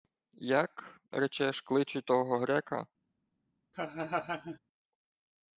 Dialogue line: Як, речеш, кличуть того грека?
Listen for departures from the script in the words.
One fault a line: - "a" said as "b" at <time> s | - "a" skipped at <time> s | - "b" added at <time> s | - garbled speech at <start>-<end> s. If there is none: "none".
none